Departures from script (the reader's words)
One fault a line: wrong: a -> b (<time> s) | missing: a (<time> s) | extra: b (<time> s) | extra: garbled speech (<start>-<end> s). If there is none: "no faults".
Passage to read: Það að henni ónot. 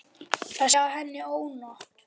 no faults